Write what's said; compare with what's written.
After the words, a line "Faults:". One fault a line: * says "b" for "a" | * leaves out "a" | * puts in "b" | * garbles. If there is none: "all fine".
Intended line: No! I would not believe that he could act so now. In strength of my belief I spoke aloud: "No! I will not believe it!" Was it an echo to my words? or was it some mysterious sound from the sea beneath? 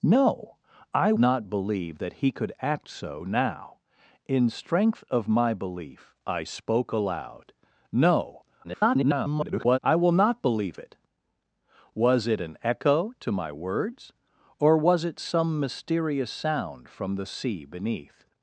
No! I not believe that he could act so now. In strength of my belief I spoke aloud: "No! [garbled] I will not believe it!" Was it an echo to my words? or was it some mysterious sound from the sea beneath?
Faults:
* leaves out "would"
* garbles